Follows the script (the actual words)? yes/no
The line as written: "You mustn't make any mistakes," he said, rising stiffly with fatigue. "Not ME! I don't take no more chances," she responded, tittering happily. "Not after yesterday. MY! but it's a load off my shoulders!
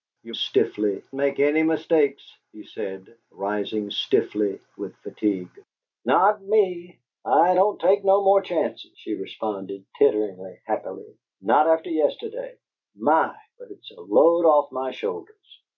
no